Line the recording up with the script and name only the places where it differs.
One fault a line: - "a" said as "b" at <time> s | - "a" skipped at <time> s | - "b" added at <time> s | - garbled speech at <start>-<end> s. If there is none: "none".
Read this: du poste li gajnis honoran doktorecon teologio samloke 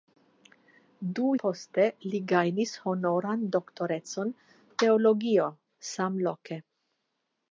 none